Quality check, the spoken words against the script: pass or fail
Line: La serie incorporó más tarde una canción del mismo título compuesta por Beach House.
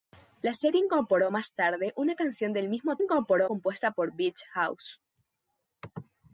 fail